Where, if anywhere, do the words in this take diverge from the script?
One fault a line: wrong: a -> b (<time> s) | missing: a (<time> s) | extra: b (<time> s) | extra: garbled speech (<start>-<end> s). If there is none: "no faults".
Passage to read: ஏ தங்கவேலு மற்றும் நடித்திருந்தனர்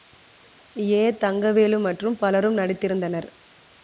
extra: பலரும் (2.2 s)